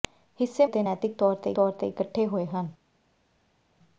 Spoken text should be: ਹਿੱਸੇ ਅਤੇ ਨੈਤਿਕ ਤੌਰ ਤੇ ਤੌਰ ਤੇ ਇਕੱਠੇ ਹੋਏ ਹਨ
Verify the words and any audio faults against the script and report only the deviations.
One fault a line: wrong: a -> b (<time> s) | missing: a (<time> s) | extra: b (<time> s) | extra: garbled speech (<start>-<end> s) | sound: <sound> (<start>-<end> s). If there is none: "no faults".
no faults